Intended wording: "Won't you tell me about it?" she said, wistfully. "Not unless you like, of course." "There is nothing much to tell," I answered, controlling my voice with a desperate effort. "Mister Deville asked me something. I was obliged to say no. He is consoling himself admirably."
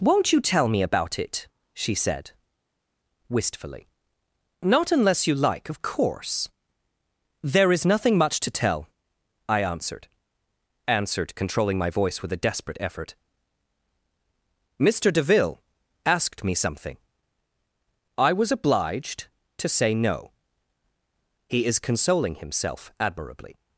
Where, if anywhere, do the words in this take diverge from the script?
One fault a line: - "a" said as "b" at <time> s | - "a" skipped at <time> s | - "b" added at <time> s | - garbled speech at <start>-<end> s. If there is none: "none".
- "answered" added at 10.9 s